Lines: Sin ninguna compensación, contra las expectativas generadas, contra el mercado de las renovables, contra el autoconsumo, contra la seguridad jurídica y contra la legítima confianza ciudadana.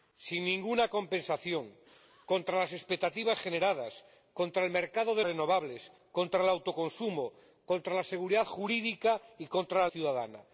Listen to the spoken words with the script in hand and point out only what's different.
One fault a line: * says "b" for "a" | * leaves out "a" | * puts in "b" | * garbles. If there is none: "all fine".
* leaves out "las"
* leaves out "legítima confianza"